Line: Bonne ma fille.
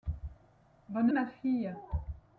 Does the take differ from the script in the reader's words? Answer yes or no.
no